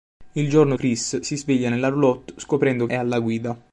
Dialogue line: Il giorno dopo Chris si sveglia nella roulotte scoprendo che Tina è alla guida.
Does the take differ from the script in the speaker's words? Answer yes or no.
yes